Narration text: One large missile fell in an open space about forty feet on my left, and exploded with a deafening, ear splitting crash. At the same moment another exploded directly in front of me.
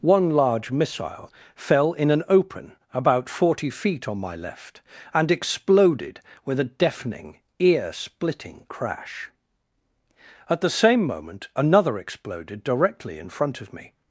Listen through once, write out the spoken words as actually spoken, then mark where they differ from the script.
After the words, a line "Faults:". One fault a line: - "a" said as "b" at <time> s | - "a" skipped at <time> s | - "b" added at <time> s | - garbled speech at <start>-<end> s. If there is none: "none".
One large missile fell in an open about forty feet on my left, and exploded with a deafening, ear splitting crash. At the same moment another exploded directly in front of me.
Faults:
- "space" skipped at 2.8 s